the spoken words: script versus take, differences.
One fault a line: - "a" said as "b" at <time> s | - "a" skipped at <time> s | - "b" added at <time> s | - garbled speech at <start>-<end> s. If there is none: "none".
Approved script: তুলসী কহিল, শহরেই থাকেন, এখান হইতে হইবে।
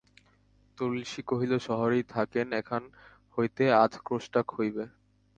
- "আধ ক্রোশটাক" added at 3.8 s